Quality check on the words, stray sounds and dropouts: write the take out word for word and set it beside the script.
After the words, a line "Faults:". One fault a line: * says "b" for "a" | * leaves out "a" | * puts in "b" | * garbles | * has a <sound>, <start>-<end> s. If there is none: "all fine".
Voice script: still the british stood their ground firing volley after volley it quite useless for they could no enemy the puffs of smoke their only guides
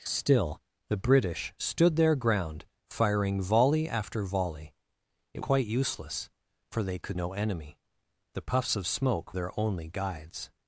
still the british stood their ground firing volley after volley it quite useless for they could no enemy the puffs of smoke their only guides
Faults:
all fine